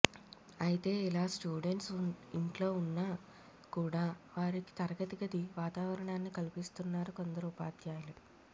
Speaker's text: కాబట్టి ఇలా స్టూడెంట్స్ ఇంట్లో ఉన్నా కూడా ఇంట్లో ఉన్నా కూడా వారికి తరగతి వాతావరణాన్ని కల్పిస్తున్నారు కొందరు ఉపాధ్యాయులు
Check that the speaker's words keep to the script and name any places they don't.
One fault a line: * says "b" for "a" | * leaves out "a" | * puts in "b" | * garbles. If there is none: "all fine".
* says "అయితే" for "కాబట్టి"
* leaves out "ఇంట్లో ఉన్నా కూడా"
* puts in "గది"